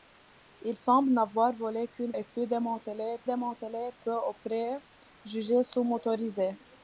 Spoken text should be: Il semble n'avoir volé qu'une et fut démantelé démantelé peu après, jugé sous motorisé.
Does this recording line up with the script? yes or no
yes